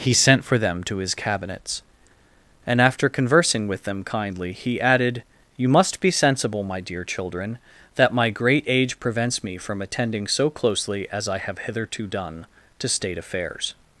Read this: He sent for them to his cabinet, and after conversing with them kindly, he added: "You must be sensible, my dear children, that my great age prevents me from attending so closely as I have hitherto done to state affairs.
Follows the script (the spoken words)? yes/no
no